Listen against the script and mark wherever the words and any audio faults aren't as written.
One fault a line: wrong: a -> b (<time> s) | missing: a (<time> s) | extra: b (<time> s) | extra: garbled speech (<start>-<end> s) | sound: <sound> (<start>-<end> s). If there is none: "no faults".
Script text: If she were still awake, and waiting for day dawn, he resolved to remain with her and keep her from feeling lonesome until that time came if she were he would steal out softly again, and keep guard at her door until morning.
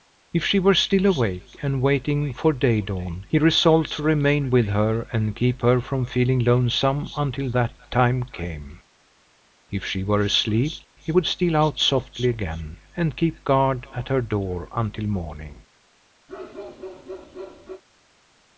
extra: asleep (10.2 s)
sound: bark (16.3-17.8 s)